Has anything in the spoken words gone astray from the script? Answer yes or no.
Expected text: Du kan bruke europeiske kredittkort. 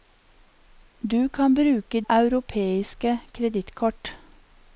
no